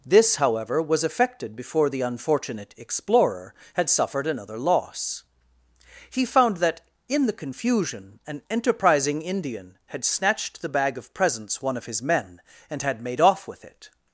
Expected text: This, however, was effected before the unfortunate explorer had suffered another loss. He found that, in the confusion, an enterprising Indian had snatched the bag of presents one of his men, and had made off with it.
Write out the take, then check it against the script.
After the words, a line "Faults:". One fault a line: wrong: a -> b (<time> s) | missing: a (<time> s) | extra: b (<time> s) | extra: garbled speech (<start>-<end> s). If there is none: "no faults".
This, however, was effected before the unfortunate explorer had suffered another loss. He found that, in the confusion, an enterprising Indian had snatched the bag of presents one of his men, and had made off with it.
Faults:
no faults